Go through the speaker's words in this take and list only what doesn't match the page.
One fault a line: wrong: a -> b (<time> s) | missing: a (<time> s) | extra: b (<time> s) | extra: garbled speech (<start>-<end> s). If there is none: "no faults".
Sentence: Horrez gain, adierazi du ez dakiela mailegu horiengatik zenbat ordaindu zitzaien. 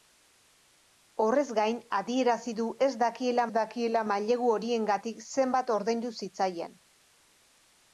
extra: dakiela (3.6 s)